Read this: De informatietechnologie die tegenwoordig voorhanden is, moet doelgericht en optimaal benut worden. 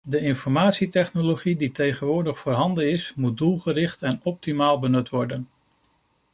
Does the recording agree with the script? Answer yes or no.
yes